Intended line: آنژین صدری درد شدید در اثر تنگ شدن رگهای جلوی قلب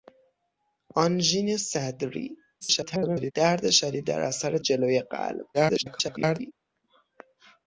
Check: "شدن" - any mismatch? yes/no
yes